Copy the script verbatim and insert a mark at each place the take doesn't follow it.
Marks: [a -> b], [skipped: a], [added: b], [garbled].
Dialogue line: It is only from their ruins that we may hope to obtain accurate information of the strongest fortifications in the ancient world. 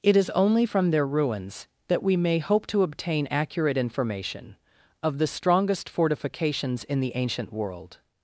It is only from their ruins that we may hope to obtain accurate information of the strongest fortifications in the ancient world.